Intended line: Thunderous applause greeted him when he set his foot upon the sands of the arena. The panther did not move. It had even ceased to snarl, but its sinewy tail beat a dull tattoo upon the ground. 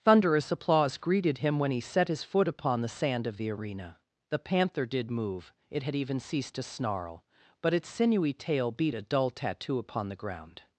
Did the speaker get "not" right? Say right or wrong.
wrong